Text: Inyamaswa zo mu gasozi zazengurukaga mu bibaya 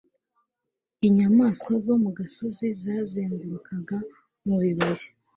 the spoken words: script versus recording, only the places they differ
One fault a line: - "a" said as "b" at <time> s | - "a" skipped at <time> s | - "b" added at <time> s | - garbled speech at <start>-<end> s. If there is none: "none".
none